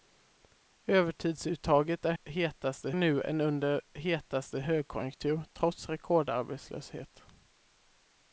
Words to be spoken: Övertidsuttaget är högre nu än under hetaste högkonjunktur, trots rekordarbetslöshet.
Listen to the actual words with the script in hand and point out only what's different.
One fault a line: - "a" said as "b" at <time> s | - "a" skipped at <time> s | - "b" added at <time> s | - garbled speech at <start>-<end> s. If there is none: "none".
- "högre" said as "hetaste" at 2.2 s